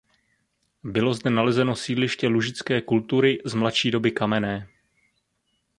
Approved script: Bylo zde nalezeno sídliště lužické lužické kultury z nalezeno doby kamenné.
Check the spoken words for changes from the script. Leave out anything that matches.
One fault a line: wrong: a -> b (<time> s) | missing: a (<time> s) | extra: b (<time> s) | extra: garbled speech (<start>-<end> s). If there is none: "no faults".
missing: lužické (2.8 s)
wrong: nalezeno -> mladší (3.5 s)